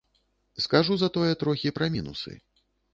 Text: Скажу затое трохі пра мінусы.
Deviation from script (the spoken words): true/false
false